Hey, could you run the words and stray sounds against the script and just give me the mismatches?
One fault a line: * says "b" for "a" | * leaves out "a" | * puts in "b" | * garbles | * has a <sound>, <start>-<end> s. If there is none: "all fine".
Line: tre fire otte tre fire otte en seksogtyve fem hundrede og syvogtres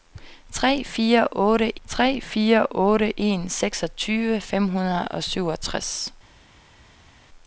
all fine